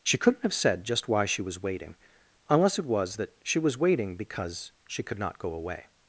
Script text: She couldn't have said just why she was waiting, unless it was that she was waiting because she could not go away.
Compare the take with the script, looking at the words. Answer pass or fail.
pass